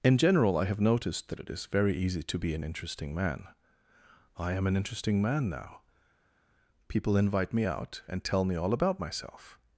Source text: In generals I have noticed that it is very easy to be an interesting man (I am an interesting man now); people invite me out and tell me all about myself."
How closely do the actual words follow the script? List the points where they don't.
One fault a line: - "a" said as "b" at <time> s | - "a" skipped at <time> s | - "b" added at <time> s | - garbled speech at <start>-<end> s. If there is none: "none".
- "generals" said as "general" at 0.2 s